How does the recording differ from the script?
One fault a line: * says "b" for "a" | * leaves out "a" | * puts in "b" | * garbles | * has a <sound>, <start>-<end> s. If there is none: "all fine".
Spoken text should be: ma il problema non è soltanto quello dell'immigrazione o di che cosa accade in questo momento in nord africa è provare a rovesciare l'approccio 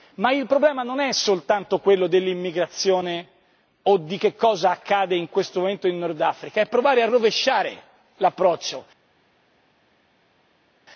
all fine